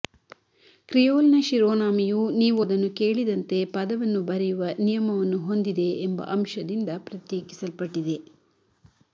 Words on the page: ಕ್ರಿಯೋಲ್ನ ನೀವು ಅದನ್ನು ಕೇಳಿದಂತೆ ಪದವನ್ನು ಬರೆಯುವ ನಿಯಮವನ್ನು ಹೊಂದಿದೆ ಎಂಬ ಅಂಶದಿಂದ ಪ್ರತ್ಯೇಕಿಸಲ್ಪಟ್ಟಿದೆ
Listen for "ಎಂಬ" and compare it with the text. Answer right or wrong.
right